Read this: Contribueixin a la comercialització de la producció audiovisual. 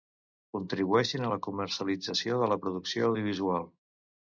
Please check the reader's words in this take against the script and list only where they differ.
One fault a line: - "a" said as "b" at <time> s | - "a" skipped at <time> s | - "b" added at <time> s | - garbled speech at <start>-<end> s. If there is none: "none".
none